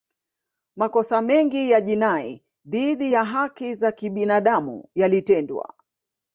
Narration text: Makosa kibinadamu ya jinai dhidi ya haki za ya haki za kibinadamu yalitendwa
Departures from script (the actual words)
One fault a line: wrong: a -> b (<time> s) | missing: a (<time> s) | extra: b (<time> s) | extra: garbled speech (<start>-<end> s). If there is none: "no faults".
wrong: kibinadamu -> mengi (1.2 s)
missing: ya haki za (3.9 s)